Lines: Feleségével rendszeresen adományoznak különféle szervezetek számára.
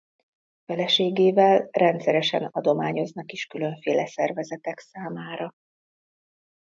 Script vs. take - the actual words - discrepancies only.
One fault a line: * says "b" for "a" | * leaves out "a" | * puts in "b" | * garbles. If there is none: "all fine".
* puts in "is"